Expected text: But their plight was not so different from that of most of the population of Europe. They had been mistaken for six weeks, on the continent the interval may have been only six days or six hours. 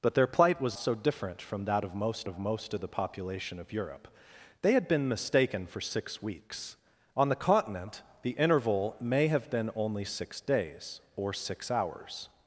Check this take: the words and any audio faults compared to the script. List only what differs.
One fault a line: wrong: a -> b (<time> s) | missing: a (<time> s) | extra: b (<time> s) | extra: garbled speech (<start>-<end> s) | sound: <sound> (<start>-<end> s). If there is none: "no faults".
missing: not (0.8 s)
extra: most of (2.4 s)